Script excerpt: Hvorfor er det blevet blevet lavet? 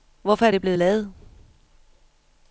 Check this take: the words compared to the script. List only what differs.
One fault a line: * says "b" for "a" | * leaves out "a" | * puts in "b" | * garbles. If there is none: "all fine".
* leaves out "blevet"